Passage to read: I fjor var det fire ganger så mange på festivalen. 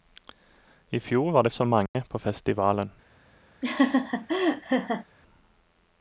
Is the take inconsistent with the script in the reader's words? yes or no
yes